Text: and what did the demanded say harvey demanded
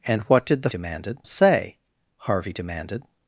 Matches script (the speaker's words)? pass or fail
pass